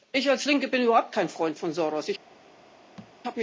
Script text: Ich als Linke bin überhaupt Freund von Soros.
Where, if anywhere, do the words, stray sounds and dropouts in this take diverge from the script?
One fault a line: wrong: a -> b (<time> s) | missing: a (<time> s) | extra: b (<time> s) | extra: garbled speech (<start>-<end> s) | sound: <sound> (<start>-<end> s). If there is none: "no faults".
extra: kein (1.1 s)
sound: thud (3.0-3.2 s)